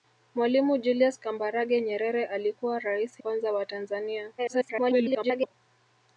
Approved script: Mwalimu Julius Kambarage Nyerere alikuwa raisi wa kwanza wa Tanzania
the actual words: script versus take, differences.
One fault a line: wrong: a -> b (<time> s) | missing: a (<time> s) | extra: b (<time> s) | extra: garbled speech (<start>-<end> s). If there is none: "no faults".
missing: wa (3.2 s)
extra: garbled speech (4.4-5.5 s)